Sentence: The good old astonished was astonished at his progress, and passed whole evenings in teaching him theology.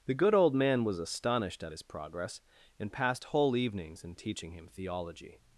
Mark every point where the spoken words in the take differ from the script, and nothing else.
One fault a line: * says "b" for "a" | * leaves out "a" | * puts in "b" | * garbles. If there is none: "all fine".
* says "man" for "astonished"